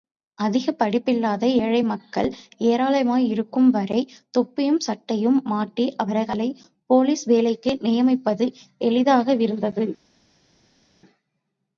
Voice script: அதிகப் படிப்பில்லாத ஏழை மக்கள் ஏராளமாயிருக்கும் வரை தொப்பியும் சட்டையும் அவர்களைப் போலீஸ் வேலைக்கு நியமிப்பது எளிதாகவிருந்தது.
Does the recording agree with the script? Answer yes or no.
no